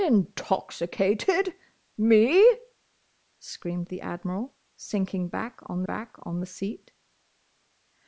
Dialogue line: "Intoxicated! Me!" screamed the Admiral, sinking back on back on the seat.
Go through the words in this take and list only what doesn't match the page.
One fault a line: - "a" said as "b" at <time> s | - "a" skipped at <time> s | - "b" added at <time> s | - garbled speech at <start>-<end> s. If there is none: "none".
none